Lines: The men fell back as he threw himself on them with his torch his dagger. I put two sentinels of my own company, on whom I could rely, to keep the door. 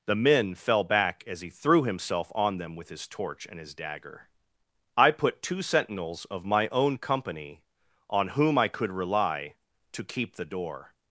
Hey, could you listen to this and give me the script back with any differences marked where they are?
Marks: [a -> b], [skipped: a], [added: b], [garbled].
The men fell back as he threw himself on them with his torch [added: and] his dagger. I put two sentinels of my own company, on whom I could rely, to keep the door.